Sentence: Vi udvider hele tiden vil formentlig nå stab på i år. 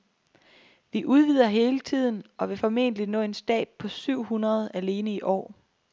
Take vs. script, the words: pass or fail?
fail